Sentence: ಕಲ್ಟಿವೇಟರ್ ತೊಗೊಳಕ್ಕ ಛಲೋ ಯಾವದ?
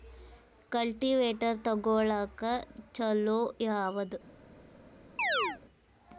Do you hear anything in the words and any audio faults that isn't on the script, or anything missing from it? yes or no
yes